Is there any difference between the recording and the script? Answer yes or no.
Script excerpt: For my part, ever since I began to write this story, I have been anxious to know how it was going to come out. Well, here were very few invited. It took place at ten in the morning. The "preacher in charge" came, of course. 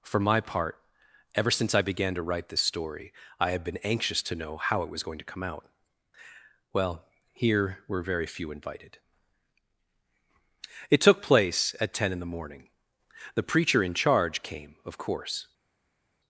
no